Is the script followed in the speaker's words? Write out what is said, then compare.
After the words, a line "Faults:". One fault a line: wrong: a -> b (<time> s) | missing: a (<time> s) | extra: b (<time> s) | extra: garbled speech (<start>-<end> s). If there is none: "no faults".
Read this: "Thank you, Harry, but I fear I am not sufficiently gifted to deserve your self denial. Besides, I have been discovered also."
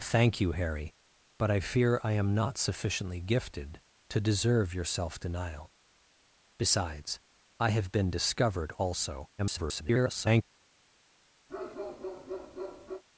"Thank you, Harry, but I fear I am not sufficiently gifted to deserve your self denial. Besides, I have been discovered also." [garbled]
Faults:
extra: garbled speech (9.4-10.4 s)